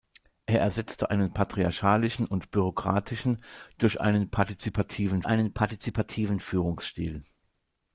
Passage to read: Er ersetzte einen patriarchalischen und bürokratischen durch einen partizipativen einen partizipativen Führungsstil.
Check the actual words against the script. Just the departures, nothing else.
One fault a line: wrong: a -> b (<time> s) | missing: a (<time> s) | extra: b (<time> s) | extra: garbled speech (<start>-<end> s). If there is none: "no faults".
no faults